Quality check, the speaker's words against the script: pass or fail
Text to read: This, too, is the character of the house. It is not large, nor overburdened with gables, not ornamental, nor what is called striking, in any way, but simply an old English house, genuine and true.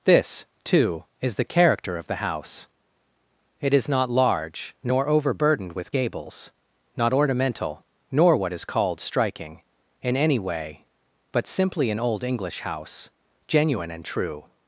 pass